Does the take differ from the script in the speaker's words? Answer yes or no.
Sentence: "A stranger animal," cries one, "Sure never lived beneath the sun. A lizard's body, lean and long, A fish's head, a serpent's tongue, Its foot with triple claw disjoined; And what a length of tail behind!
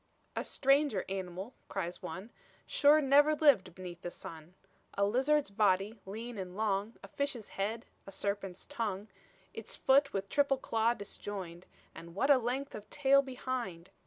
no